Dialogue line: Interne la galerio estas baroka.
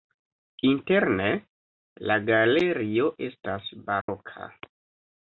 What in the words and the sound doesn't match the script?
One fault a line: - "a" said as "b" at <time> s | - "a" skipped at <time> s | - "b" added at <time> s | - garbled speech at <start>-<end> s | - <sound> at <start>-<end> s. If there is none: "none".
- dropout at 4.0-4.1 s